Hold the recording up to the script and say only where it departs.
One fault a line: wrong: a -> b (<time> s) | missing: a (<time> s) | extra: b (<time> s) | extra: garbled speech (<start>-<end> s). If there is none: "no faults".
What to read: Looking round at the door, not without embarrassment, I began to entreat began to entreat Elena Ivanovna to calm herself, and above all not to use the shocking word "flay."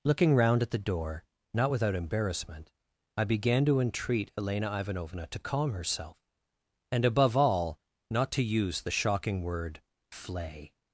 missing: began to entreat (4.3 s)